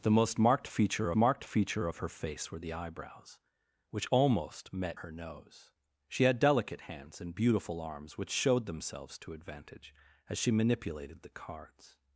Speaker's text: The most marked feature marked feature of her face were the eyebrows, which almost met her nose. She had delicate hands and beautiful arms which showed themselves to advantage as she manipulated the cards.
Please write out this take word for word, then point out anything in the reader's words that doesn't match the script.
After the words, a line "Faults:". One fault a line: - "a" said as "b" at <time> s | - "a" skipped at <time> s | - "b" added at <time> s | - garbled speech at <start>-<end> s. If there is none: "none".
The most marked feature marked feature of her face were the eyebrows, which almost met her nose. She had delicate hands and beautiful arms which showed themselves to advantage as she manipulated the cards.
Faults:
none